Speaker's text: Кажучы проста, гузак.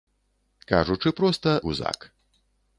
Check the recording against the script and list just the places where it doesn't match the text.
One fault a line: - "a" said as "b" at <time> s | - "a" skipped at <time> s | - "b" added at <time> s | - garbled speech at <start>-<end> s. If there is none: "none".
none